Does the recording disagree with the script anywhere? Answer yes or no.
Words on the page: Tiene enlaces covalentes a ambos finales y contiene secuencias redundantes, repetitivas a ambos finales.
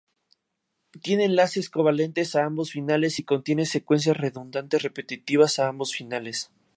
no